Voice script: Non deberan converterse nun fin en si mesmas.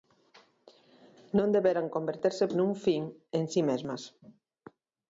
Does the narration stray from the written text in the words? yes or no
no